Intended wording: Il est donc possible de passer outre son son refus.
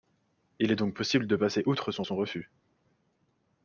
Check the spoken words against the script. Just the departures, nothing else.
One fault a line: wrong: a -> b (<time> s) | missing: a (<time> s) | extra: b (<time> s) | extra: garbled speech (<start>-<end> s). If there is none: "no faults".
no faults